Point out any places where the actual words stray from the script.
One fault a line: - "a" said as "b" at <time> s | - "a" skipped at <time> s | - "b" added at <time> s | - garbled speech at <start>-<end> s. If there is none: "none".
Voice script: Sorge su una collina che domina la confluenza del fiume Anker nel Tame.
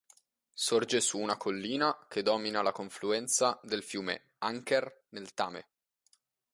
none